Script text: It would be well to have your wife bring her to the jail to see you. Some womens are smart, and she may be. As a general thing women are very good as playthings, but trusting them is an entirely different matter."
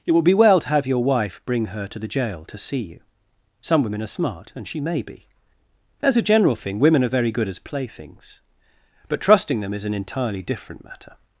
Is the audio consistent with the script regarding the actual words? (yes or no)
no